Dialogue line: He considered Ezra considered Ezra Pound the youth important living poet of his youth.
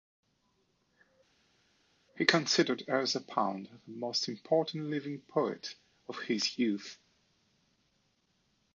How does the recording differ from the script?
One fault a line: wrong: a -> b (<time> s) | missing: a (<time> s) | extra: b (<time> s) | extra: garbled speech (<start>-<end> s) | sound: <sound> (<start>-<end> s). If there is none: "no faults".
missing: considered Ezra (3.2 s)
wrong: youth -> most (3.9 s)